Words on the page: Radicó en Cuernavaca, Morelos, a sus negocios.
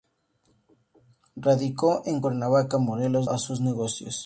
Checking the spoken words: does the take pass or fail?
pass